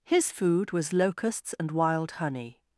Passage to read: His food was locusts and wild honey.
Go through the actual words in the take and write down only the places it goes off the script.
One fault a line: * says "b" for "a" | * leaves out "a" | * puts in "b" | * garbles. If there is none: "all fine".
all fine